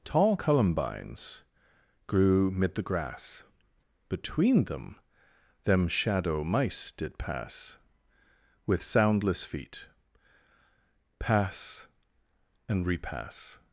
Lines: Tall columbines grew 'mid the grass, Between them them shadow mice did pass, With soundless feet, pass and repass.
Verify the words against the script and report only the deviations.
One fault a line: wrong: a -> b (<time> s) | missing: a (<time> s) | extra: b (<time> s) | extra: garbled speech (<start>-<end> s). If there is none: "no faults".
no faults